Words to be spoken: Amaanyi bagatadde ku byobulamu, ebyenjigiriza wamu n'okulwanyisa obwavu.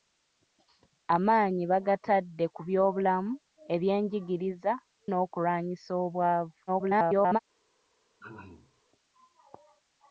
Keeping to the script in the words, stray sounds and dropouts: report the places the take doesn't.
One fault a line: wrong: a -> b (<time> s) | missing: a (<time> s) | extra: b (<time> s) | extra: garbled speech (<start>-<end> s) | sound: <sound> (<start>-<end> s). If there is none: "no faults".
missing: wamu (4.7 s)
extra: garbled speech (6.7-7.4 s)
sound: throat clearing (8.2-8.8 s)